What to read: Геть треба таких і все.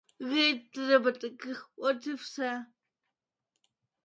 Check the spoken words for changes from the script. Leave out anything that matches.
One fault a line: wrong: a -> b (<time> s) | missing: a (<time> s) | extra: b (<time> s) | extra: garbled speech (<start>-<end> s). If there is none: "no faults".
extra: от (1.8 s)